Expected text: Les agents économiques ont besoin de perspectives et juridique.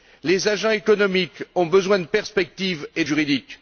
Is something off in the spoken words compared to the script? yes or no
no